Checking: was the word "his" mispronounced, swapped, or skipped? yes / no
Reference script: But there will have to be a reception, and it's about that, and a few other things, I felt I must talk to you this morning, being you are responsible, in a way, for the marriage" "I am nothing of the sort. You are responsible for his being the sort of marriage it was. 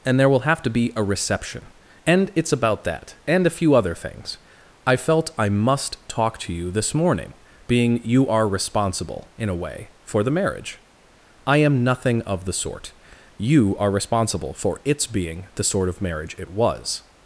yes